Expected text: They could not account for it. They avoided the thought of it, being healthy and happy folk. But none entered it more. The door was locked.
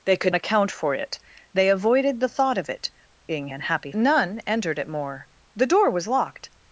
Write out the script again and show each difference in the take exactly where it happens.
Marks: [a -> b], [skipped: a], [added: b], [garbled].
They could [skipped: not] account for it. They avoided the thought of it, being [skipped: healthy] and happy [skipped: folk. But] none entered it more. The door was locked.